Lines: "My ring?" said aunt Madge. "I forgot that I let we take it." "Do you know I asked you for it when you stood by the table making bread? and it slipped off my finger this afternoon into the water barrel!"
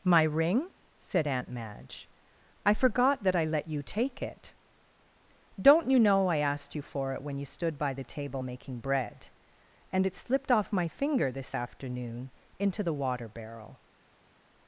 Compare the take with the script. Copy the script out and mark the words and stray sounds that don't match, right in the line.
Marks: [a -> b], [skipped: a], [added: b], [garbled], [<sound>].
"My ring?" said aunt Madge. "I forgot that I let [we -> you] take it." ["Do -> Don't] you know I asked you for it when you stood by the table making bread? and it slipped off my finger this afternoon into the water barrel!"